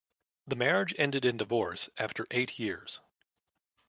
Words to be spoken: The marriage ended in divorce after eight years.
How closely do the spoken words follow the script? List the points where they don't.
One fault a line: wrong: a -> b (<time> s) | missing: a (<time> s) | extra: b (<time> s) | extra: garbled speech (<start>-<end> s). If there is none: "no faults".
no faults